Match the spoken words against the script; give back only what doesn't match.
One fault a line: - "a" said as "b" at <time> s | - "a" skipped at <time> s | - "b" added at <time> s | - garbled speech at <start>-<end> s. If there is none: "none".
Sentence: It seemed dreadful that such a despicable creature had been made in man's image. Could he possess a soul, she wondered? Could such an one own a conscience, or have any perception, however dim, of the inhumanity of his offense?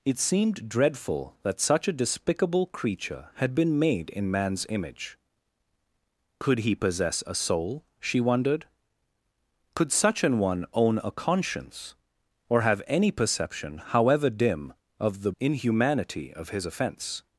none